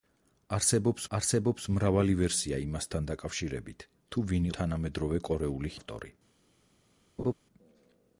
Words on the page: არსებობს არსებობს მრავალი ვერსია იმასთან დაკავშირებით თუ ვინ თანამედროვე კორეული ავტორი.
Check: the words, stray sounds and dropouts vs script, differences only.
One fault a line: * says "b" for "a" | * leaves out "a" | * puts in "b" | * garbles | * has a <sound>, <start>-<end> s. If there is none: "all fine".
* has a laugh, 7.2-7.3 s